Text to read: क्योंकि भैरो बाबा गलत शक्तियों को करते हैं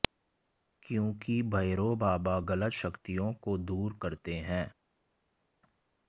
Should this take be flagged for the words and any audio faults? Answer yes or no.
yes